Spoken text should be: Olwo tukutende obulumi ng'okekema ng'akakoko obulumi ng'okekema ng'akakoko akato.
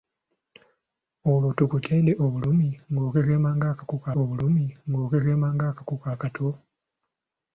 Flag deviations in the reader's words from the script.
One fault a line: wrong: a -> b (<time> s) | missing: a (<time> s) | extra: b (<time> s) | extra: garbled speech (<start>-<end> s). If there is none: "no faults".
no faults